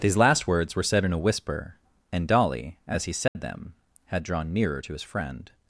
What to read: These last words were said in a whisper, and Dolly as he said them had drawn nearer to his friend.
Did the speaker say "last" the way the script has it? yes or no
yes